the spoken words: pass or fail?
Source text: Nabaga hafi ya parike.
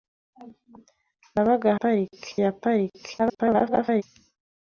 fail